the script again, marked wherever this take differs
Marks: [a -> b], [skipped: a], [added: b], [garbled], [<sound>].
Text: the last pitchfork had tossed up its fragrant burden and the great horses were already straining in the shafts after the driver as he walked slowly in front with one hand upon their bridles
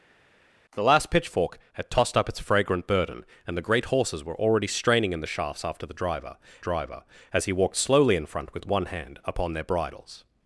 the last pitchfork had tossed up its fragrant burden and the great horses were already straining in the shafts after the driver [added: driver] as he walked slowly in front with one hand upon their bridles